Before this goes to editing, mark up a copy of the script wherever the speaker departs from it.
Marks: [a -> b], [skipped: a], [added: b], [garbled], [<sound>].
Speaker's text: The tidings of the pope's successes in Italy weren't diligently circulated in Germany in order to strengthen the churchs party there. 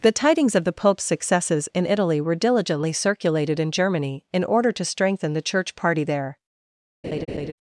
The tidings of the pope's successes in Italy [weren't -> were] diligently circulated in Germany in order to strengthen the [churchs -> church] party there. [laugh]